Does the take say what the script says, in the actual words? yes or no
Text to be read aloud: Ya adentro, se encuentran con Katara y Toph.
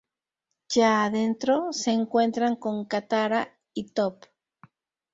yes